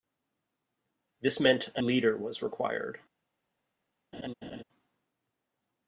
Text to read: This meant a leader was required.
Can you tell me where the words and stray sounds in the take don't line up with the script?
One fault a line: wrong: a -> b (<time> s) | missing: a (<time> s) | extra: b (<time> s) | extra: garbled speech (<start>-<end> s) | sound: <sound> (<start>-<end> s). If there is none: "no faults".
sound: laugh (4.1-4.6 s)